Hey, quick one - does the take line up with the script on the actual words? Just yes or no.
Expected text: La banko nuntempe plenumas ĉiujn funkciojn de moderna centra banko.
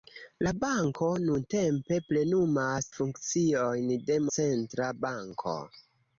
no